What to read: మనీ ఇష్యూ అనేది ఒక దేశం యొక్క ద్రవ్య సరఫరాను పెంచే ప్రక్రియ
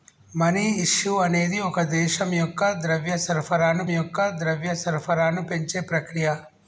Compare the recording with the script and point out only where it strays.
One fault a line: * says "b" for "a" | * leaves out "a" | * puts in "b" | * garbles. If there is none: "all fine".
* puts in "యొక్క ద్రవ్య సరఫరాను"